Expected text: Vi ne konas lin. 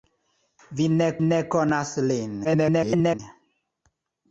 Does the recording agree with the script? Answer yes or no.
no